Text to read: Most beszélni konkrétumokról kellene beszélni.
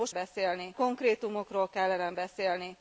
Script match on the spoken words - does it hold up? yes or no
yes